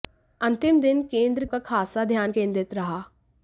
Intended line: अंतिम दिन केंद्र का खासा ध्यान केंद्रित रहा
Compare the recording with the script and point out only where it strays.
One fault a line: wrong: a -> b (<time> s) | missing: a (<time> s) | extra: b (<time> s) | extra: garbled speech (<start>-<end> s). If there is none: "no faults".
no faults